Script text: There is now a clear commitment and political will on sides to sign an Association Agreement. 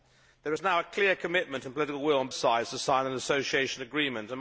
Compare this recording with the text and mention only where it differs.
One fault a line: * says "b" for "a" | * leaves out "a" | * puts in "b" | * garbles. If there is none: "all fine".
all fine